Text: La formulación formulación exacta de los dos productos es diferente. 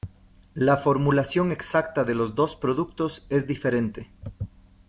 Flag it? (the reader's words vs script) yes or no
yes